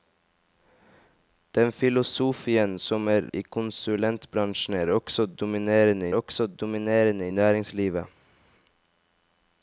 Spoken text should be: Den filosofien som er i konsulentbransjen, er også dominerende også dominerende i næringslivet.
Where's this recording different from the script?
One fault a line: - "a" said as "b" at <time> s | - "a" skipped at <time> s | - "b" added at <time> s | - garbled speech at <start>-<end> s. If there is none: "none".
none